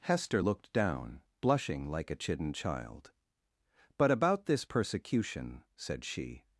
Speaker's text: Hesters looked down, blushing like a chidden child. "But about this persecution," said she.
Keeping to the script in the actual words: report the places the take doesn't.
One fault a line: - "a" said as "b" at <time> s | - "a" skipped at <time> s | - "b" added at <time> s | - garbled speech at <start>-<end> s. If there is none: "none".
- "Hesters" said as "Hester" at 0.0 s